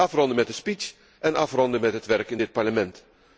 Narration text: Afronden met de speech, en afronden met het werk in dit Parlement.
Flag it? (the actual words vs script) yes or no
no